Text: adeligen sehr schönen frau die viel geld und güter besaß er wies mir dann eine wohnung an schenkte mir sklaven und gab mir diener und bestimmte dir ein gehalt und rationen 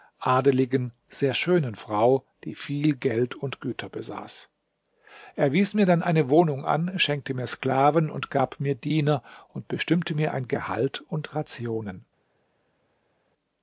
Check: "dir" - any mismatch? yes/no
yes